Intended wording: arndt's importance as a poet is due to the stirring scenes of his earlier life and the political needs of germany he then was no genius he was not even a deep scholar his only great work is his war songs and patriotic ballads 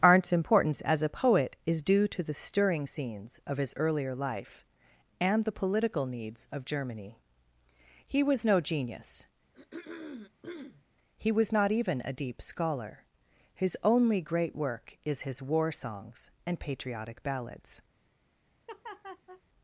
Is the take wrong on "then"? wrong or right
wrong